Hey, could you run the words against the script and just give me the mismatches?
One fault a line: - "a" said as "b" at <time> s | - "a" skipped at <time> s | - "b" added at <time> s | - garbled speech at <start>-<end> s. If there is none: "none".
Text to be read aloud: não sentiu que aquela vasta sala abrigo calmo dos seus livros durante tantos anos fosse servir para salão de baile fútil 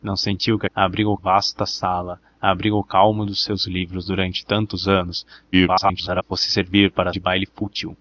- "aquela" said as "abrigo" at 0.7 s
- garbled speech at 5.5-6.2 s
- "salão" skipped at 7.1 s